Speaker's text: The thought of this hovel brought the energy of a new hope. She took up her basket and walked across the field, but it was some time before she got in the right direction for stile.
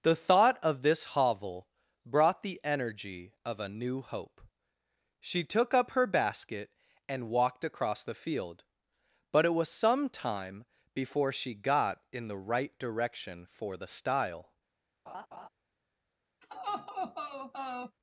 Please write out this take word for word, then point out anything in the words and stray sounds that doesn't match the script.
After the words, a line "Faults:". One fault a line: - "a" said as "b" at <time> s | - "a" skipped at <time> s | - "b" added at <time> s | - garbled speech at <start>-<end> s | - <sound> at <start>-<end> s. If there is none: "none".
The thought of this hovel brought the energy of a new hope. She took up her basket and walked across the field, but it was some time before she got in the right direction for the stile.
Faults:
- "the" added at 13.8 s
- laugh at 15.1-15.5 s
- laugh at 16.4-18.0 s